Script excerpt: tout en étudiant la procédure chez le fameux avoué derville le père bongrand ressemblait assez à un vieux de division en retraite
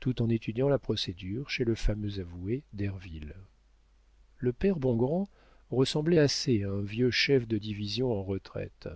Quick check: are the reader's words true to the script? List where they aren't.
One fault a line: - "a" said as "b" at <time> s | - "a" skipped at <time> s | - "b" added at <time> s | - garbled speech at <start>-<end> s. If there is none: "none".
- "chef" added at 7.1 s